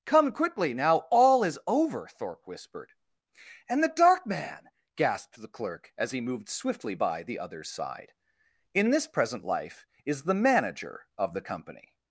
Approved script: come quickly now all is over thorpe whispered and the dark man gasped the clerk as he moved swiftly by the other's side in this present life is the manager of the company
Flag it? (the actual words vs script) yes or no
no